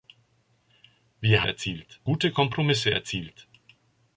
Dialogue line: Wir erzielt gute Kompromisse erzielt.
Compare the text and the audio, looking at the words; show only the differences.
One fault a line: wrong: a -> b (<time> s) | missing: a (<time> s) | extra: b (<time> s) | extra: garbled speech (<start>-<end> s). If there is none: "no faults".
no faults